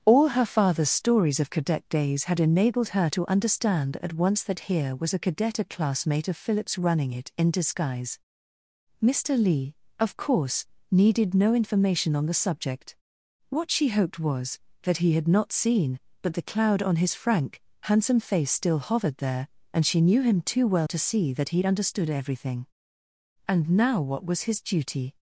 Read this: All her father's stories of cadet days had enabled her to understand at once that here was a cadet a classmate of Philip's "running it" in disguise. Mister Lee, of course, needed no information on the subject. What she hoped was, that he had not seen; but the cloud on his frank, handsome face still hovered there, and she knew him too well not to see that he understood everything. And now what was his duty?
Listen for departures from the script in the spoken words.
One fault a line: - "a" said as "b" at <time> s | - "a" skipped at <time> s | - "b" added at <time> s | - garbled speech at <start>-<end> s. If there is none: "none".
- "not" skipped at 20.9 s